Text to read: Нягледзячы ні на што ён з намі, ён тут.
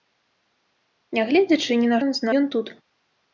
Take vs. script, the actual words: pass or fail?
fail